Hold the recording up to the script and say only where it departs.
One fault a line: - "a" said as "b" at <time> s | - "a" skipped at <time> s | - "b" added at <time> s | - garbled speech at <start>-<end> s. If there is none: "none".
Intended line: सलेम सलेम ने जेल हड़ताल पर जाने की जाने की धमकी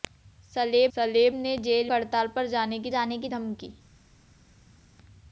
none